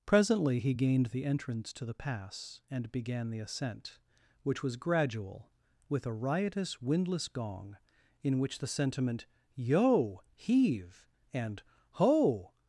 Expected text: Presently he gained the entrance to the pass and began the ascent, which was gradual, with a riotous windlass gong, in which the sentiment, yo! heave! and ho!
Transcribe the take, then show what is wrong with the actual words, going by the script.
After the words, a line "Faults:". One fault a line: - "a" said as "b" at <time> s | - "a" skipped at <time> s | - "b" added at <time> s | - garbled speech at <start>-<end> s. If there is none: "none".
Presently he gained the entrance to the pass and began the ascent, which was gradual, with a riotous windlass gong, in which the sentiment, yo! heave! and ho!
Faults:
none